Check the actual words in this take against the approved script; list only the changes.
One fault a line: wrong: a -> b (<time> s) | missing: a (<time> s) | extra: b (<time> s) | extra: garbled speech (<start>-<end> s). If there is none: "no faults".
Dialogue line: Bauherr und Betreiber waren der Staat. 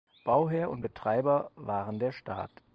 no faults